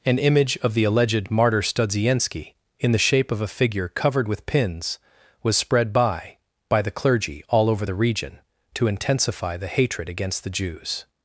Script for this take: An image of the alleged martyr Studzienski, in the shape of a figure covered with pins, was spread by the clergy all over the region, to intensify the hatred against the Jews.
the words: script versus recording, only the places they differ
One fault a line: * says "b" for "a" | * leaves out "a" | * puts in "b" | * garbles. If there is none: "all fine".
* puts in "by"